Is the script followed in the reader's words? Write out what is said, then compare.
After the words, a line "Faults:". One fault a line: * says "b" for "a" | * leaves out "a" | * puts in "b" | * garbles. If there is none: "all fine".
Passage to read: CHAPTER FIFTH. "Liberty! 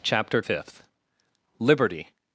CHAPTER FIFTH. "Liberty!
Faults:
all fine